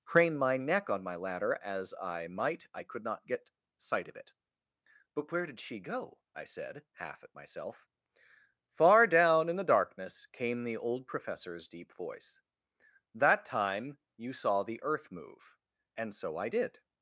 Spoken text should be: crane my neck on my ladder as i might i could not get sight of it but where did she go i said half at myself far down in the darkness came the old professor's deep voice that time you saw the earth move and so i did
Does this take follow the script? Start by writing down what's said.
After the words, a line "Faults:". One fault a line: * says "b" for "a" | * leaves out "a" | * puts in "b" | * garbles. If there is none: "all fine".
crane my neck on my ladder as i might i could not get sight of it but where did she go i said half at myself far down in the darkness came the old professor's deep voice that time you saw the earth move and so i did
Faults:
all fine